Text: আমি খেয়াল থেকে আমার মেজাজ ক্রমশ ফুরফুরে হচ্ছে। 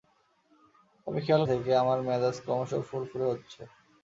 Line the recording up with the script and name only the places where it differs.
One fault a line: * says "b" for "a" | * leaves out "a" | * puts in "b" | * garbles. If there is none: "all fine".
all fine